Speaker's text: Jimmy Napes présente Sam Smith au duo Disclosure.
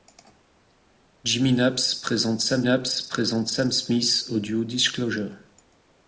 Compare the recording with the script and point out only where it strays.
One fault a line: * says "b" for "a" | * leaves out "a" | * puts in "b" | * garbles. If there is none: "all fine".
* puts in "Napes présente Sam"